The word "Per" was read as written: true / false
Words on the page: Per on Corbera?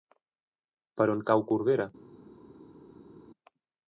true